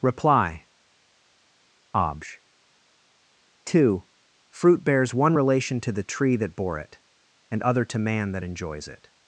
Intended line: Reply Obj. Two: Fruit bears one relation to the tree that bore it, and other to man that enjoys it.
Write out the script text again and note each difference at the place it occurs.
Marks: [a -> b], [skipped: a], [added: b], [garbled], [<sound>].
Reply Obj. Two: Fruit bears one relation to the tree that bore it, and other to man that enjoys it.